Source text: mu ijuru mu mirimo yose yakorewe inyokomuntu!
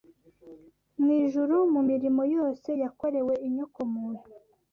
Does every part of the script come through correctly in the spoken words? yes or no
yes